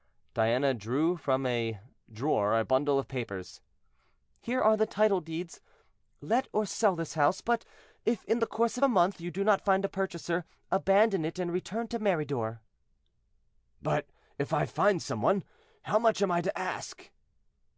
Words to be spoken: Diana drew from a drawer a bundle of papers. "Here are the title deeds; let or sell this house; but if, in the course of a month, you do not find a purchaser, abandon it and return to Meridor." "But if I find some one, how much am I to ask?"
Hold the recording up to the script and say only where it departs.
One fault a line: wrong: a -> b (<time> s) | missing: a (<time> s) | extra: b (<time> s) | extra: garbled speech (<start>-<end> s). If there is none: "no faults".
no faults